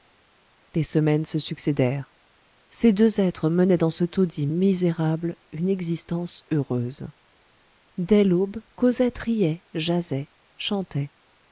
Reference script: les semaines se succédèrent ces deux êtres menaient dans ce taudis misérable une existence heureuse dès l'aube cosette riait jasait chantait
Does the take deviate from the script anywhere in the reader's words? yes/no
no